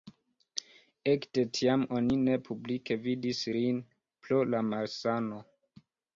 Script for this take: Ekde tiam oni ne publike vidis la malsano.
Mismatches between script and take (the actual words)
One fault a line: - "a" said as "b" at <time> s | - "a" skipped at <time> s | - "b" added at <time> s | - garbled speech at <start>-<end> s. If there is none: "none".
- "lin pro" added at 3.6 s